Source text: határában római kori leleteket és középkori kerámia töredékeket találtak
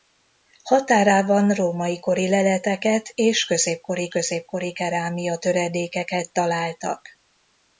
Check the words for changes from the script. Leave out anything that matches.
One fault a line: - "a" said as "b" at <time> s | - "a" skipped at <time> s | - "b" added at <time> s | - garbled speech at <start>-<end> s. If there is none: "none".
- "középkori" added at 4.1 s